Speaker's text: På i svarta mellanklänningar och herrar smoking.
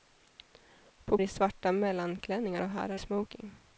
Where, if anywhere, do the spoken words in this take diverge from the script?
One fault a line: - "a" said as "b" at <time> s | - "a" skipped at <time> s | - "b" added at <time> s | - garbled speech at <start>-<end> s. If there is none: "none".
none